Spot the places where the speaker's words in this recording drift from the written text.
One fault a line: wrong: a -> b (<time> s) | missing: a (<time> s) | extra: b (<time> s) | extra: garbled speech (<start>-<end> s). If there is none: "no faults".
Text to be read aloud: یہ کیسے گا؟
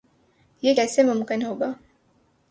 extra: ممکن ہو (1.0 s)